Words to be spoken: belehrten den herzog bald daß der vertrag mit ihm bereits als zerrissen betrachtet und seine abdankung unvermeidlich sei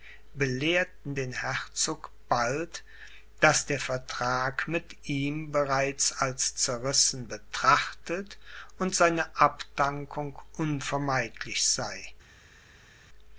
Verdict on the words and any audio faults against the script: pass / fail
pass